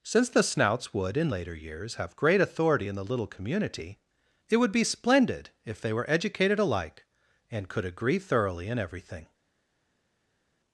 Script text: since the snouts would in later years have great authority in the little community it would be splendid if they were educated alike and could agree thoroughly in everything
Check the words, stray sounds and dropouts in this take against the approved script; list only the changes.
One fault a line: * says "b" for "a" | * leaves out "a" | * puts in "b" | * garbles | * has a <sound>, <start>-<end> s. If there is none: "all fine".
all fine